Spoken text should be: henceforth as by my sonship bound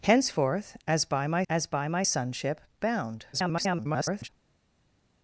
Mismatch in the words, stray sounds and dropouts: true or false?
true